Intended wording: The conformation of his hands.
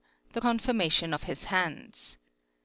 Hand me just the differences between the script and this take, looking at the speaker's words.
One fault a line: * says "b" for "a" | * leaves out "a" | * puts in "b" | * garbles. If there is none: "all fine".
all fine